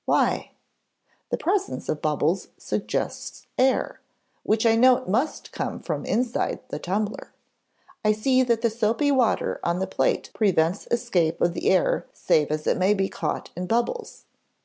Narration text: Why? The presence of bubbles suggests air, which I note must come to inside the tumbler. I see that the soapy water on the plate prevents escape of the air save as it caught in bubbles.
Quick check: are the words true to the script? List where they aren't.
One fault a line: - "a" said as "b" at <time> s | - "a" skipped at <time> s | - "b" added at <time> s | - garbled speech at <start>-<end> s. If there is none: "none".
- "to" said as "from" at 5.8 s
- "may be" added at 12.8 s